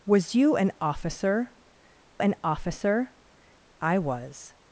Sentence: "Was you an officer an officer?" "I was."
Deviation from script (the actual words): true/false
false